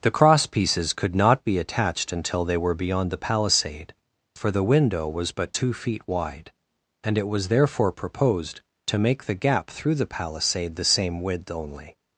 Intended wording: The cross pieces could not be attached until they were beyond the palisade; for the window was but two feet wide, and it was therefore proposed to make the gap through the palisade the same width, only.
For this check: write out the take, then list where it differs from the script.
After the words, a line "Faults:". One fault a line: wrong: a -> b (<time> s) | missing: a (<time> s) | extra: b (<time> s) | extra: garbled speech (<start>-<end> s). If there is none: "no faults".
The cross pieces could not be attached until they were beyond the palisade; for the window was but two feet wide, and it was therefore proposed to make the gap through the palisade the same width, only.
Faults:
no faults